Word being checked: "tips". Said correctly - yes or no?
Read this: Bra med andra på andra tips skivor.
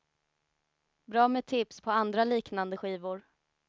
no